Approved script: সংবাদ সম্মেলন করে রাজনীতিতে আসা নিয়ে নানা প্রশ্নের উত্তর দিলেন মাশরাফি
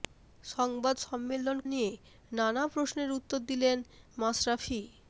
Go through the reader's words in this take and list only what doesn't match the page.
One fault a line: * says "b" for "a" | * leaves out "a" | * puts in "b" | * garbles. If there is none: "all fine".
* leaves out "করে রাজনীতিতে আসা"